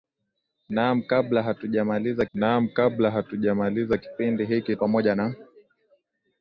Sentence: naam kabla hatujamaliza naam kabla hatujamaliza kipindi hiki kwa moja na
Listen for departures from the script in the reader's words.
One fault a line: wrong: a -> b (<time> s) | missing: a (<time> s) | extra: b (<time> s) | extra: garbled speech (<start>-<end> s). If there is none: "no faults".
no faults